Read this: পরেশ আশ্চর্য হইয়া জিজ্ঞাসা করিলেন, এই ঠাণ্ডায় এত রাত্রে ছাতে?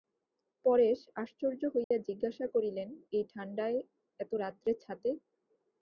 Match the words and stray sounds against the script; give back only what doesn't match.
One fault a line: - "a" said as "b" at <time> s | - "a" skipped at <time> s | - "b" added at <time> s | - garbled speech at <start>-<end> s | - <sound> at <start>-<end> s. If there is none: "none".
- dropout at 1.8-1.9 s